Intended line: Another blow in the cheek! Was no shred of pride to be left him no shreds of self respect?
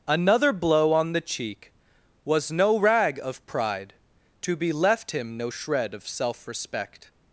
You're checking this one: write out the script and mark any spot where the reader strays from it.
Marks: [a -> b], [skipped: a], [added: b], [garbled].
Another blow [in -> on] the cheek! Was no [shred -> rag] of pride to be left him no [shreds -> shred] of self respect?